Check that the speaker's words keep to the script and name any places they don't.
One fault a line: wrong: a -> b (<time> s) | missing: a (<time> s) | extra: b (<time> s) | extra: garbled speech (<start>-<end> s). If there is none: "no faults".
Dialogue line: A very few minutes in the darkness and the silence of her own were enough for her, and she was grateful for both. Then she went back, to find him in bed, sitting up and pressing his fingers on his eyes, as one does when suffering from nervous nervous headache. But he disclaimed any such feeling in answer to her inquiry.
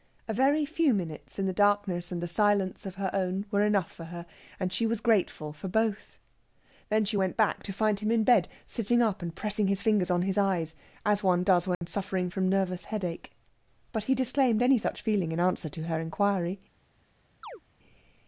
missing: nervous (12.8 s)